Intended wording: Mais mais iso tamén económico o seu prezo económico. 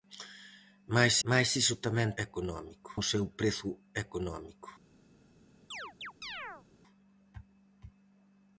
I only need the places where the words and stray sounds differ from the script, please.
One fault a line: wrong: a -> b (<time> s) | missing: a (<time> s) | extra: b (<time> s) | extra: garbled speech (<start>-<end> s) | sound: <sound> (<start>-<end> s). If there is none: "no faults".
sound: chirp (5.7-6.6 s)